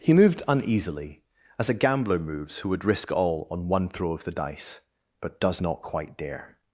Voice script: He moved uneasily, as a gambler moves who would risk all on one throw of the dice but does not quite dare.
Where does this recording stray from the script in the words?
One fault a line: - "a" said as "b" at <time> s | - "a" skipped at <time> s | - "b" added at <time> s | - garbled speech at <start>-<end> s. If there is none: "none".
none